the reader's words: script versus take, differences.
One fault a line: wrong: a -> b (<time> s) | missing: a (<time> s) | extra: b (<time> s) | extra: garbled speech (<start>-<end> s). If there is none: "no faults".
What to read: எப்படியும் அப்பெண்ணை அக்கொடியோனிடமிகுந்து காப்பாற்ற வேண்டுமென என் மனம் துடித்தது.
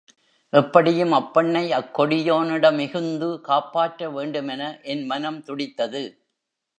no faults